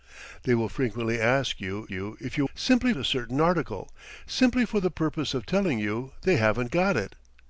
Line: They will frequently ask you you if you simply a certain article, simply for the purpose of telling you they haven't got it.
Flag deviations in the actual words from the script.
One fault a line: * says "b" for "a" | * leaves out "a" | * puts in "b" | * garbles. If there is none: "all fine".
all fine